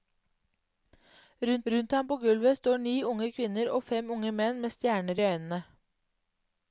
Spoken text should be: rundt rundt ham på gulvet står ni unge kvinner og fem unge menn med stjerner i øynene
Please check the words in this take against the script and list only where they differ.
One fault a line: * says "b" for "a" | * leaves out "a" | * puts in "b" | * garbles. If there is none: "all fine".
all fine